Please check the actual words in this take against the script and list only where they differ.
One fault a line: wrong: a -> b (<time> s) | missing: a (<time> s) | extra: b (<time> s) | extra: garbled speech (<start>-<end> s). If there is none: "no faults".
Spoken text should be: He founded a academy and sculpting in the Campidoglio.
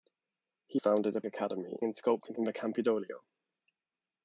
no faults